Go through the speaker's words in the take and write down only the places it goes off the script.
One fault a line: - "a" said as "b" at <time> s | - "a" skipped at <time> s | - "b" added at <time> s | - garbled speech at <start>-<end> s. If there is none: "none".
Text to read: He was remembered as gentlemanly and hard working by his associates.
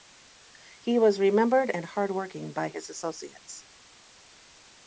- "as gentlemanly" skipped at 1.7 s